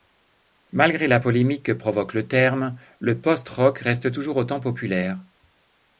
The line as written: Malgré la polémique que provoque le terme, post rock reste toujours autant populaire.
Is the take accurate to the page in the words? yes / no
no